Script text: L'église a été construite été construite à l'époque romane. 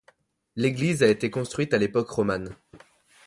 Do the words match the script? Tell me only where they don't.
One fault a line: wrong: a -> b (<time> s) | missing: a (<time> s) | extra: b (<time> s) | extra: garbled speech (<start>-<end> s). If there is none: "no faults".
missing: été construite (1.8 s)